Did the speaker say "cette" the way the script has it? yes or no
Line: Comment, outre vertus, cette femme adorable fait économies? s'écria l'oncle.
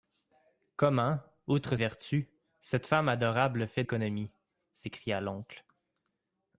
yes